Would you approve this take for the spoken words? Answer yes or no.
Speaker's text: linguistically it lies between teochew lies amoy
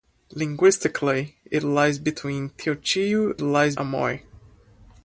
yes